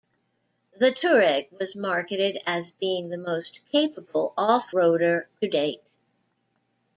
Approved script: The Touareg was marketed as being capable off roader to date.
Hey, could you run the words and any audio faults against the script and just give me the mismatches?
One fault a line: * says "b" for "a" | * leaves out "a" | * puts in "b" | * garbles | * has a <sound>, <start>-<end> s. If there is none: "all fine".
* puts in "the most"